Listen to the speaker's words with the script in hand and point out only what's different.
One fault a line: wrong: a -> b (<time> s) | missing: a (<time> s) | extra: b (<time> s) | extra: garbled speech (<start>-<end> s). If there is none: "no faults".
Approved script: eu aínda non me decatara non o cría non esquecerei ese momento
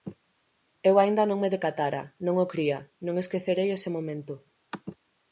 no faults